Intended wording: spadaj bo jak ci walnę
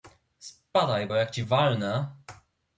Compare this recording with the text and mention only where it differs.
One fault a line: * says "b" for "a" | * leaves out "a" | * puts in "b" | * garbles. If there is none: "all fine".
all fine